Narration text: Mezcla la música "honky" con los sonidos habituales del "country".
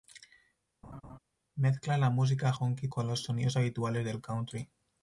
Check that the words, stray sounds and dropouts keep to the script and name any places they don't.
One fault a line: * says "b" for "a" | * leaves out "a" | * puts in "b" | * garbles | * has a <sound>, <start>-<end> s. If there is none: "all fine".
* has a laugh, 0.8-1.2 s